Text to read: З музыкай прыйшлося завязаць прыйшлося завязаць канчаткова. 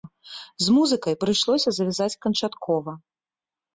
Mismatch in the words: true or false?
true